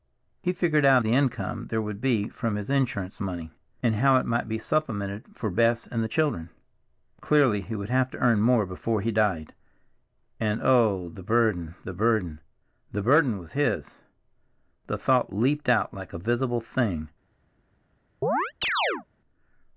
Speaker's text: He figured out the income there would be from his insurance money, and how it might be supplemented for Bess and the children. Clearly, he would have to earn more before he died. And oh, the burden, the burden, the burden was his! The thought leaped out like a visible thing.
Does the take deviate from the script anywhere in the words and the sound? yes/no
yes